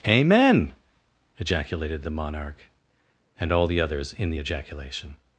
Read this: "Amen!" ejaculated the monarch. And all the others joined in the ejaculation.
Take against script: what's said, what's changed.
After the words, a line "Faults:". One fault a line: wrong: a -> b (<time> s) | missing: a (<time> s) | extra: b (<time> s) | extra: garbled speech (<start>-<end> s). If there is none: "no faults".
"Amen!" ejaculated the monarch. And all the others in the ejaculation.
Faults:
missing: joined (4.1 s)